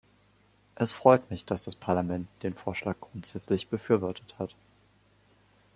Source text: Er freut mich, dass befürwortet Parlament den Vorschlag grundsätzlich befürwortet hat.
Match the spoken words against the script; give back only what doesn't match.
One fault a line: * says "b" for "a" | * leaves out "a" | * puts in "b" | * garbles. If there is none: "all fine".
* says "Es" for "Er"
* says "das" for "befürwortet"